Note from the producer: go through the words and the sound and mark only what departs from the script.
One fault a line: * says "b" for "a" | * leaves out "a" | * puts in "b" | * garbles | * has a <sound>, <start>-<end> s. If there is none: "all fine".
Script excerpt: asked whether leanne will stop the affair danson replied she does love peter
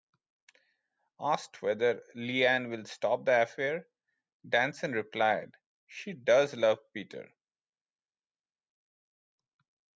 all fine